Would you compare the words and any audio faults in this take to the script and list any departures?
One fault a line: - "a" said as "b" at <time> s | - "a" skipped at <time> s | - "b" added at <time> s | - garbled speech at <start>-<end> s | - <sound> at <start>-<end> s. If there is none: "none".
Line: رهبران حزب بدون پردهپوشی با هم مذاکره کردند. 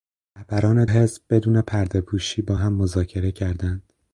none